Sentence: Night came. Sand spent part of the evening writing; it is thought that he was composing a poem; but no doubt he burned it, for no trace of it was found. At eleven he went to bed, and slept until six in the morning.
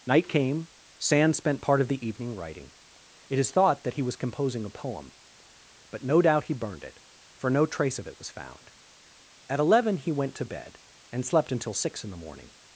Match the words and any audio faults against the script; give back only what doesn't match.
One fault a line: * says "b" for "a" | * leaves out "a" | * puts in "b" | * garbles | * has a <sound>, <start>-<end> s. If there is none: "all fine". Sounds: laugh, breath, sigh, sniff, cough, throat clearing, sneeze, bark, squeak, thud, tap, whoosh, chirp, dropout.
all fine